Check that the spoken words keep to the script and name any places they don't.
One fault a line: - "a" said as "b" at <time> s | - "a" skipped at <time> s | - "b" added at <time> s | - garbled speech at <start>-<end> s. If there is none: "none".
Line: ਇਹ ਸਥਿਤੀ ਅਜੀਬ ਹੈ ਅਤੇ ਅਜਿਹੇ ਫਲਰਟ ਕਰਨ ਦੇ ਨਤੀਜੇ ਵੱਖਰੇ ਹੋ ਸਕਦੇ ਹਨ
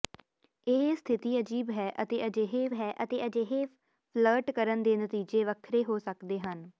- "ਹੈ ਅਤੇ ਅਜਿਹੇ" added at 2.7 s